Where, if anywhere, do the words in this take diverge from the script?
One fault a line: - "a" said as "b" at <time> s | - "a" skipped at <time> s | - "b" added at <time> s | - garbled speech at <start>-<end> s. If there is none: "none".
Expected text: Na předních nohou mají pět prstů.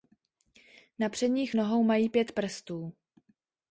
none